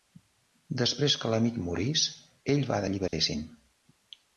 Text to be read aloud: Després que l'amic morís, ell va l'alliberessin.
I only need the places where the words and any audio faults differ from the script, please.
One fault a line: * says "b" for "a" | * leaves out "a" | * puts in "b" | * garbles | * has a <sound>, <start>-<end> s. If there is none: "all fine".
* has a dropout, 3.1-3.1 s